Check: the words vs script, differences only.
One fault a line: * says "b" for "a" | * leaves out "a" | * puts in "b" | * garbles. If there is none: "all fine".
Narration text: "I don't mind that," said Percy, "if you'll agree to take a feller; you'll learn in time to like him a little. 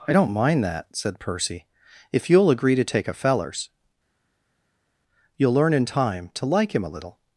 * says "fellers" for "feller"